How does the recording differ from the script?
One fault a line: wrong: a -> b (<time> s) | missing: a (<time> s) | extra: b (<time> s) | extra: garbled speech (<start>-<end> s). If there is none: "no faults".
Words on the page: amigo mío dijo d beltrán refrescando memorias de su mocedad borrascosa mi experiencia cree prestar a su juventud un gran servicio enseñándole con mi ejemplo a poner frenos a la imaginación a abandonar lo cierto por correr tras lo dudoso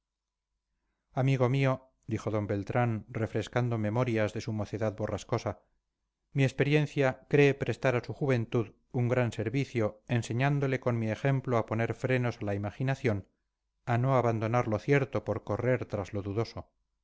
extra: no (14.0 s)